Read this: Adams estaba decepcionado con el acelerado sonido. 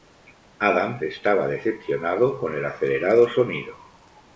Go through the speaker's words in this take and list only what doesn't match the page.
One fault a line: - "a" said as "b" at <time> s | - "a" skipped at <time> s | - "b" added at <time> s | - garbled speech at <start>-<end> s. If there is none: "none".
none